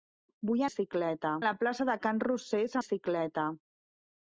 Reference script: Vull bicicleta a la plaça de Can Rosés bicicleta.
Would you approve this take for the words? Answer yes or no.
yes